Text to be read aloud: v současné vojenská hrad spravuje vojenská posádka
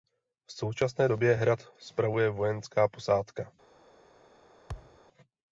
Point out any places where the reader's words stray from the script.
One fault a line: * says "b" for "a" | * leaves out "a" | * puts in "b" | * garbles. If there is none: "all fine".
* says "době" for "vojenská"